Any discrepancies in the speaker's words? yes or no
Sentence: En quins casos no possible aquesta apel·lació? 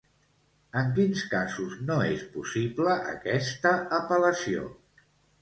yes